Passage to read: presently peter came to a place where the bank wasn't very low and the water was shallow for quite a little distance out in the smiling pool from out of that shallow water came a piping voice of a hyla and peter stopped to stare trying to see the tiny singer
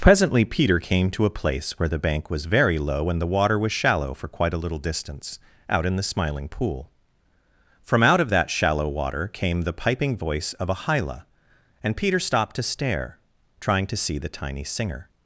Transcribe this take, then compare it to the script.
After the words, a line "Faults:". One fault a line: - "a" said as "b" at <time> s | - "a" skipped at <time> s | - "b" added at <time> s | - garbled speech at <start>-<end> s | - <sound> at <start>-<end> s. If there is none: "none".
presently peter came to a place where the bank was very low and the water was shallow for quite a little distance out in the smiling pool from out of that shallow water came the piping voice of a hyla and peter stopped to stare trying to see the tiny singer
Faults:
- "wasn't" said as "was" at 2.3 s
- "a" said as "the" at 9.6 s